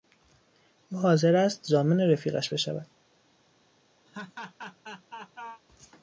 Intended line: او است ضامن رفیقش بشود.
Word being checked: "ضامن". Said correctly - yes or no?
yes